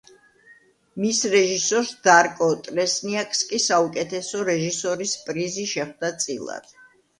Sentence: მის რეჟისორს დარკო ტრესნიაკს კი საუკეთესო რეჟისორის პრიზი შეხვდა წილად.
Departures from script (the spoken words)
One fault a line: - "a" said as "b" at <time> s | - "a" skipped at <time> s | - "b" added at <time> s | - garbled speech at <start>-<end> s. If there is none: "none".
none